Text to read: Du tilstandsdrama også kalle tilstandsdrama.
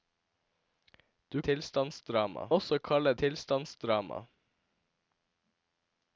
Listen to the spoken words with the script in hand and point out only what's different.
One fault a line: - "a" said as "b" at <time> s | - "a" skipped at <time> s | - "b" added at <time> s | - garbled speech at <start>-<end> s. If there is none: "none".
none